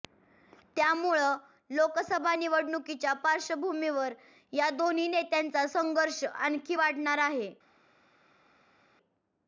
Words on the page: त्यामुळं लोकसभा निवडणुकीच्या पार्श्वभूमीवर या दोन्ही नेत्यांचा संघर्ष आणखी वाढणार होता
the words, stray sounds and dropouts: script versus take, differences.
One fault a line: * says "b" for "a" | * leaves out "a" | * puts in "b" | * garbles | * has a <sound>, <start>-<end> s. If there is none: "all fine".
* says "आहे" for "होता"